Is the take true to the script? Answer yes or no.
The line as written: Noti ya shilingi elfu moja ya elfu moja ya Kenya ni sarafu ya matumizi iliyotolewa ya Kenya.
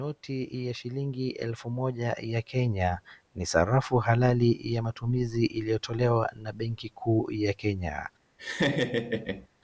no